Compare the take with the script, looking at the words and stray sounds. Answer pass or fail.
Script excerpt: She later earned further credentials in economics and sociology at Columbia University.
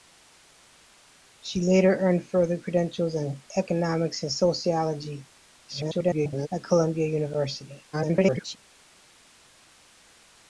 fail